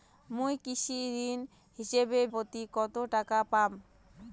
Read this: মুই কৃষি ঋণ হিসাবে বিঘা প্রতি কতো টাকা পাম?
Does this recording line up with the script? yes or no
no